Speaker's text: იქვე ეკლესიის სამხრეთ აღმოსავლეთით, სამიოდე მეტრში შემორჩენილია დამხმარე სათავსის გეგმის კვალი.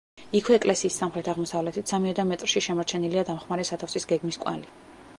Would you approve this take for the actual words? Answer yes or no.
yes